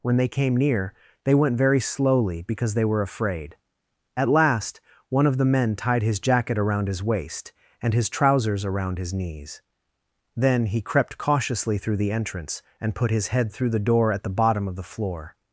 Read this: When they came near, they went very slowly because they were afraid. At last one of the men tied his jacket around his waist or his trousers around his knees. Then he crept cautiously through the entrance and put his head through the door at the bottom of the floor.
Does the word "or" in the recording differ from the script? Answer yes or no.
yes